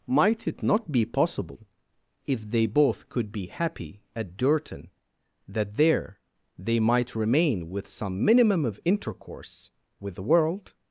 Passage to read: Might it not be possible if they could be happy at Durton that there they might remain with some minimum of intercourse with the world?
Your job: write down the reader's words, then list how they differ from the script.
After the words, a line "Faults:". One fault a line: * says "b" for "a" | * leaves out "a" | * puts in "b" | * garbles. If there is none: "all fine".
Might it not be possible if they both could be happy at Durton that there they might remain with some minimum of intercourse with the world?
Faults:
* puts in "both"